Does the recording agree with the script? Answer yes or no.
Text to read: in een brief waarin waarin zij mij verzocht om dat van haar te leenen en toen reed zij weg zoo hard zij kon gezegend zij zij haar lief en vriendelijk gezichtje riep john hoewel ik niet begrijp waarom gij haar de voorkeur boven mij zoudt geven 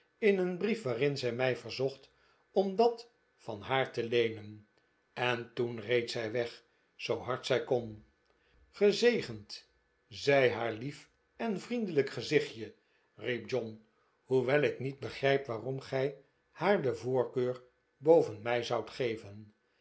no